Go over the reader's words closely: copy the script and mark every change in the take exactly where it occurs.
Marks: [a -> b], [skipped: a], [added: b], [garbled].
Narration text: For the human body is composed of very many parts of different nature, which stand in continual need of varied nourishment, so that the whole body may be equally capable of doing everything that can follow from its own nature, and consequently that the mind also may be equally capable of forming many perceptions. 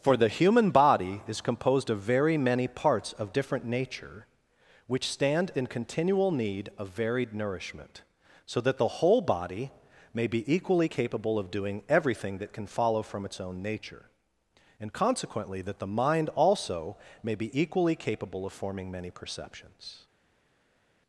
For the human body is composed of very many parts of different nature, which stand in continual need of varied nourishment, so that the whole body may be equally capable of doing everything that can follow from its own nature, and consequently that the mind also may be equally capable of forming many perceptions.